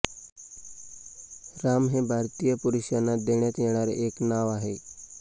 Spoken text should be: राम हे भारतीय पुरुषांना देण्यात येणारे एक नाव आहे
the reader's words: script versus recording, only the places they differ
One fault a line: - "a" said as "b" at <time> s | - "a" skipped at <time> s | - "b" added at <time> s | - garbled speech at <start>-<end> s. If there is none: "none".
none